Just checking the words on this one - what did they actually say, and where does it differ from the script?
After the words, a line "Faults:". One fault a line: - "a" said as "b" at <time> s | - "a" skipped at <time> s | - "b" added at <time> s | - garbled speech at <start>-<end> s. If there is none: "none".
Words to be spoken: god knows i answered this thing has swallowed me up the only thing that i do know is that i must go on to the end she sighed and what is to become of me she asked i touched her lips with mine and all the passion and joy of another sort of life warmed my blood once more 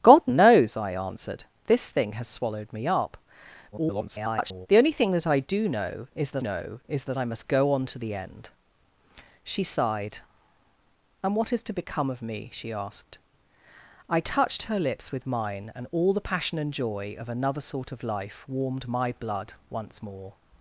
god knows i answered this thing has swallowed me up [garbled] the only thing that i do know is that know is that i must go on to the end she sighed and what is to become of me she asked i touched her lips with mine and all the passion and joy of another sort of life warmed my blood once more
Faults:
- garbled speech at 3.7-4.7 s
- "know is that" added at 6.4 s